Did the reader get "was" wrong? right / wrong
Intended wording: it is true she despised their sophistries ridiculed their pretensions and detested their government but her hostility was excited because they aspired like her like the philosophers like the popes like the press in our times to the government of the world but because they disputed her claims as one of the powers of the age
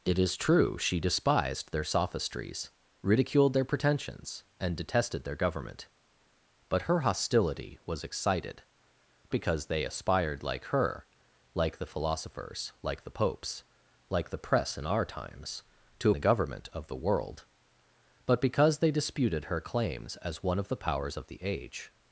right